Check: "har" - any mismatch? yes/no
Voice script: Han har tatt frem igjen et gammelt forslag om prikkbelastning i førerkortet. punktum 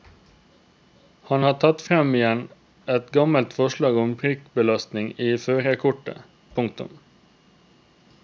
no